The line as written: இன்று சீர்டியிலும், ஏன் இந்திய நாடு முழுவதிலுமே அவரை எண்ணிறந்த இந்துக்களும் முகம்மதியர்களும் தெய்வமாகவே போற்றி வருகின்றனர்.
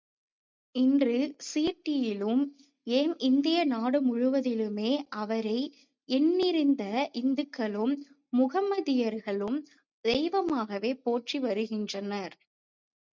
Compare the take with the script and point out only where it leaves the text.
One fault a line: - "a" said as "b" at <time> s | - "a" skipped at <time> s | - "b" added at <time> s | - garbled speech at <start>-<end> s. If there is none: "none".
none